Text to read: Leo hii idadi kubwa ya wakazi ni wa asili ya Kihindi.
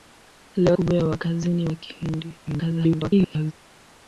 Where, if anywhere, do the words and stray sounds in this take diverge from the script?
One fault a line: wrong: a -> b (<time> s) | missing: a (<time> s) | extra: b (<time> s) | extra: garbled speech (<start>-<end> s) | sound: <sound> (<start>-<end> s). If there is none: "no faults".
missing: hii idadi (0.8 s)
missing: wa asili (1.7 s)
extra: garbled speech (2.5-3.5 s)